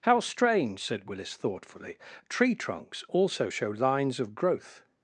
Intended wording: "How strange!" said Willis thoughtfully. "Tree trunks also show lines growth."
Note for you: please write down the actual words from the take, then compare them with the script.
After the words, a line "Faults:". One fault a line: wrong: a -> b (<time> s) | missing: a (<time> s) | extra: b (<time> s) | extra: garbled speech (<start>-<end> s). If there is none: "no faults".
"How strange!" said Willis thoughtfully. "Tree trunks also show lines of growth."
Faults:
extra: of (4.2 s)